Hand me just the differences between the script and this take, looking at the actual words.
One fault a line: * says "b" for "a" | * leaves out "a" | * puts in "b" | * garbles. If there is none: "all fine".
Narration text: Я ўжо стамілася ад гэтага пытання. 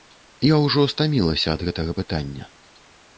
all fine